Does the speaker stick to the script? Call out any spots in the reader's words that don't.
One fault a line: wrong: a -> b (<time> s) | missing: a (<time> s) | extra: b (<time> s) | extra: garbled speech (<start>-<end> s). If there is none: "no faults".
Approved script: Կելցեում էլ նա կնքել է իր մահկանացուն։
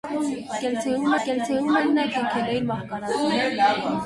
extra: կելցեում (1.3 s)